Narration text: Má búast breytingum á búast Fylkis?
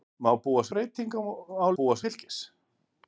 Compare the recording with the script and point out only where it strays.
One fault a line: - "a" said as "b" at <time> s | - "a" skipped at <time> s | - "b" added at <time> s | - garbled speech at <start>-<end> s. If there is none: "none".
none